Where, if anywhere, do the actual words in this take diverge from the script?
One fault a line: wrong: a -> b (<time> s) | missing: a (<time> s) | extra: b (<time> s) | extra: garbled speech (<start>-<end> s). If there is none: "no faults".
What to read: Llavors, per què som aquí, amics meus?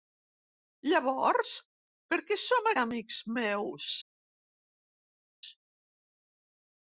missing: aquí (2.7 s)